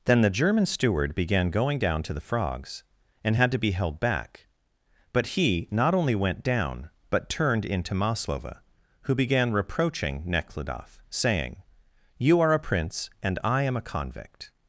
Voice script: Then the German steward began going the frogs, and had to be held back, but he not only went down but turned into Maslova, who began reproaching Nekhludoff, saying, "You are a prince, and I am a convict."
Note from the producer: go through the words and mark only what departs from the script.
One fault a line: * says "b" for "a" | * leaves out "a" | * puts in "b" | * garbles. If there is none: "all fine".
* puts in "down to"